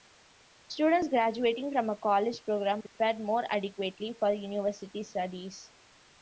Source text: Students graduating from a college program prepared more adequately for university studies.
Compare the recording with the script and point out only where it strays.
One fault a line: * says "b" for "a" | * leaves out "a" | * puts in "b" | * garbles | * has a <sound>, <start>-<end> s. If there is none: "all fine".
* has a dropout, 2.9-3.0 s